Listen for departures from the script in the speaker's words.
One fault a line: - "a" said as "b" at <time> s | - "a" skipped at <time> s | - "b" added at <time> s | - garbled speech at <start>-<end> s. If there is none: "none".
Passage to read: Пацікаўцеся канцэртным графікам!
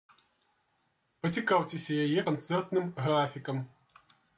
- "яе" added at 2.1 s